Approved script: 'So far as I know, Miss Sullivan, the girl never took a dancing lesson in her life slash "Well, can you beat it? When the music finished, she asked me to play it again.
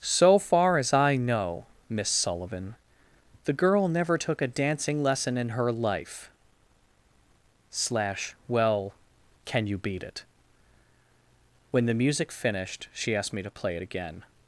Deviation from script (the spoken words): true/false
false